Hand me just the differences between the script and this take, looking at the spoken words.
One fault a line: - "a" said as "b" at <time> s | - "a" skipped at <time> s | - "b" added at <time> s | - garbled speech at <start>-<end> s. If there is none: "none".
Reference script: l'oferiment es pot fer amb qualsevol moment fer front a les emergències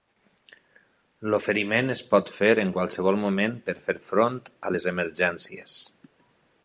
- "amb" said as "en" at 2.6 s
- "per" added at 3.7 s